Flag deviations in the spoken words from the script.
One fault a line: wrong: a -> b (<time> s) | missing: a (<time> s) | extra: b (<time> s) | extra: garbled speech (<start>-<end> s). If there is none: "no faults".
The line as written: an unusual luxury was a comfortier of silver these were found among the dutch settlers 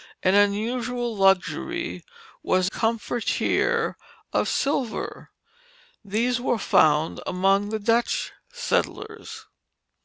missing: a (2.7 s)